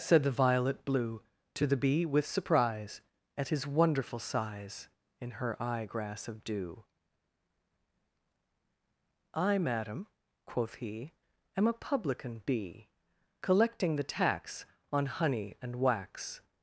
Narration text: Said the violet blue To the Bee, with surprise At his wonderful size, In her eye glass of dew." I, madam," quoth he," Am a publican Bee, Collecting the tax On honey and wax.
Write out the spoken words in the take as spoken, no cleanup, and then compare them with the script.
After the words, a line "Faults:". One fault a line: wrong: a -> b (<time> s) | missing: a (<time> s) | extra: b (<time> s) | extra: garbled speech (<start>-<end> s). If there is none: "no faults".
Said the violet blue To the Bee, with surprise At his wonderful size, In her eye grass of dew." I, madam," quoth he," Am a publican Bee, Collecting the tax On honey and wax.
Faults:
wrong: glass -> grass (5.9 s)